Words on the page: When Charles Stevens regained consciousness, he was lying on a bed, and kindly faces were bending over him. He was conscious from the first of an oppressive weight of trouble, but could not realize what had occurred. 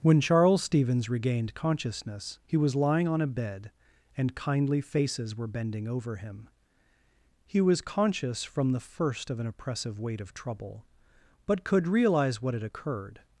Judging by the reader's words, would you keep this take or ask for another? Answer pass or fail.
fail